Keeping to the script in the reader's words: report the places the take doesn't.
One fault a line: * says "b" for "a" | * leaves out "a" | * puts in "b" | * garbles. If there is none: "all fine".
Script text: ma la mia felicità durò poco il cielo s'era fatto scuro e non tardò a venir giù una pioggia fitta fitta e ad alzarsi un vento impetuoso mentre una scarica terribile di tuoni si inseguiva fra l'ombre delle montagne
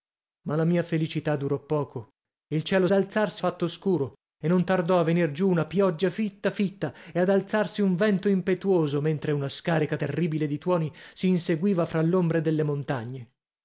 * says "alzarsi" for "s'era"